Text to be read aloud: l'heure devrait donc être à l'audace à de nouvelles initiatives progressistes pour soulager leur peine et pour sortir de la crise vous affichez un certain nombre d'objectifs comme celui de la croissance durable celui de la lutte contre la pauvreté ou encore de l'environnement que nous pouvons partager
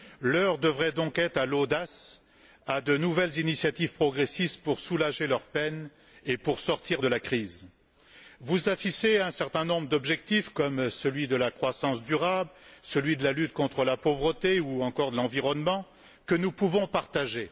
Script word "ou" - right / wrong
right